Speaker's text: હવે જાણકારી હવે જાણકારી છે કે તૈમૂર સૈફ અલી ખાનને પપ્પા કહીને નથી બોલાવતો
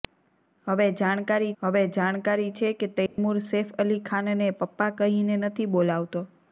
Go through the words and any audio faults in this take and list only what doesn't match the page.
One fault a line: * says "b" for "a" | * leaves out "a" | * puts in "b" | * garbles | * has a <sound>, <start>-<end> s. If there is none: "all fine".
* has a dropout, 3.1-3.2 s